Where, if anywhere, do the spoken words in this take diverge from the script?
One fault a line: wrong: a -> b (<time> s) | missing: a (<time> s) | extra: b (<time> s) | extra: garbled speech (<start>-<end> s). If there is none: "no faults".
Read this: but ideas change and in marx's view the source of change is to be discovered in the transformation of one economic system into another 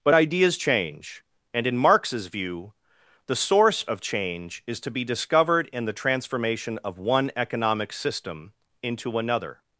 no faults